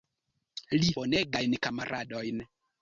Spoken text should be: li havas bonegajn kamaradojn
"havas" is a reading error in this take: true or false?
true